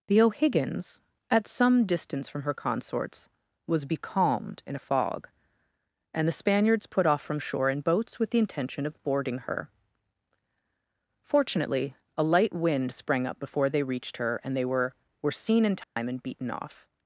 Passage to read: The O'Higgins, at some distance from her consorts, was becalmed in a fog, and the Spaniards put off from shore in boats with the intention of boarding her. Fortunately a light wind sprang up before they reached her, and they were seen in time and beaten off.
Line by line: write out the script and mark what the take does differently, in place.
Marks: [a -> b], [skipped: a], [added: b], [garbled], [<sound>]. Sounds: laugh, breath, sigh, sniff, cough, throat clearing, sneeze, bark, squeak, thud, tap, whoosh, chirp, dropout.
The O'Higgins, at some distance from her consorts, was becalmed in a fog, and the Spaniards put off from shore in boats with the intention of boarding her. Fortunately a light wind sprang up before they reached her, and they were [added: were] seen in time [dropout] and beaten off.